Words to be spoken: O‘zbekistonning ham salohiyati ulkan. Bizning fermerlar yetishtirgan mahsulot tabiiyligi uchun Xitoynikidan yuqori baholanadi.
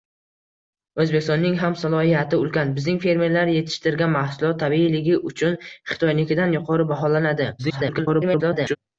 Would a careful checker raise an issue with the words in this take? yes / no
yes